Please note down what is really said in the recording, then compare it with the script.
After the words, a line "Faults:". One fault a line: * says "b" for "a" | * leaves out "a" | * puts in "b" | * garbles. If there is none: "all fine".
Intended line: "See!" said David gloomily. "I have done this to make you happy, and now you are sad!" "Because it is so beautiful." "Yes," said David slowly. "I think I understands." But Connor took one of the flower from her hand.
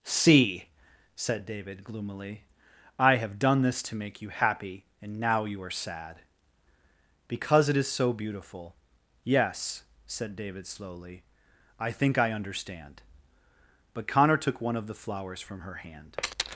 "See!" said David gloomily. "I have done this to make you happy, and now you are sad!" "Because it is so beautiful." "Yes," said David slowly. "I think I understand." But Connor took one of the flowers from her hand.
Faults:
* says "understand" for "understands"
* says "flowers" for "flower"